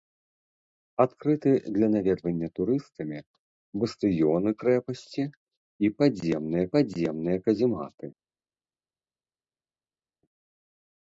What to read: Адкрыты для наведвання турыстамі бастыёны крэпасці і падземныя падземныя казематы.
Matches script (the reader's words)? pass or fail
pass